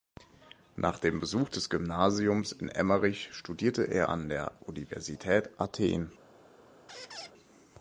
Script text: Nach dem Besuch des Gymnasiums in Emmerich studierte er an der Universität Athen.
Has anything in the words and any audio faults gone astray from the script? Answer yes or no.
yes